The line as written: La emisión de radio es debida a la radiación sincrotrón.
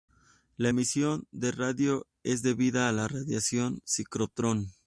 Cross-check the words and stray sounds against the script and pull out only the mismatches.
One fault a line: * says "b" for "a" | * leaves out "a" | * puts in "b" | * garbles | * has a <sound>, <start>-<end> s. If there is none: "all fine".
all fine